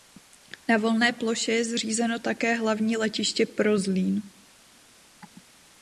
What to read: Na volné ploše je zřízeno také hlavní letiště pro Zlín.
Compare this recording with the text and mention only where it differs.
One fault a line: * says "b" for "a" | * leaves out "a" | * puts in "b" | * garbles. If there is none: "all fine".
all fine